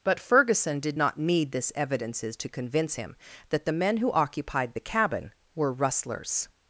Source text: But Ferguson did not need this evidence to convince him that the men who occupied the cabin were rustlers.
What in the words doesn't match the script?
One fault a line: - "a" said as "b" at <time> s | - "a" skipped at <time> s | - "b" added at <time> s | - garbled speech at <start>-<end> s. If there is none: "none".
- "evidence" said as "evidences" at 1.7 s